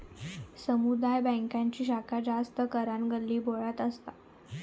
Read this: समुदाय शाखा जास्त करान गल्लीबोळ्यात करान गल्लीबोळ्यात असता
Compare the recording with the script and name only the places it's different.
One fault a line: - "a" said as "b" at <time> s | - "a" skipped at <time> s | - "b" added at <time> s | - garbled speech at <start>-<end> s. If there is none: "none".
- "बॅन्कांची" added at 1.2 s
- "करान गल्लीबोळ्यात" skipped at 3.8 s